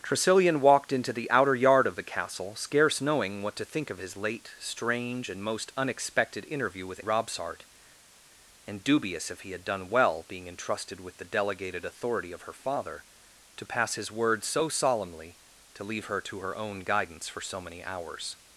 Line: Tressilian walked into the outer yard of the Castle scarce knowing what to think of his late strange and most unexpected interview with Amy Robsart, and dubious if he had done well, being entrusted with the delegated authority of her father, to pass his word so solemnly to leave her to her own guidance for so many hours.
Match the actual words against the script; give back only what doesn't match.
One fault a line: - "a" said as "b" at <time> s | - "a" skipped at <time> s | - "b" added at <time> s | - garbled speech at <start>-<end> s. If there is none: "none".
- "Amy" skipped at 7.0 s